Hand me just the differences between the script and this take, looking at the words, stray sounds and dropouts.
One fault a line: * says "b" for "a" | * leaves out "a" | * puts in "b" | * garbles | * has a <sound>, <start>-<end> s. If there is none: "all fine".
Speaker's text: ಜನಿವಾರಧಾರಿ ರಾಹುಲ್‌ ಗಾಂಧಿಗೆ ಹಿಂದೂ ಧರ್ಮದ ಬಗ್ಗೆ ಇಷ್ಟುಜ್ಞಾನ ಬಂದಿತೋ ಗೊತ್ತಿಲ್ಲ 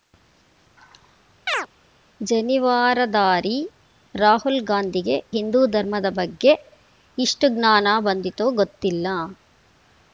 * has a chirp, 1.5-1.7 s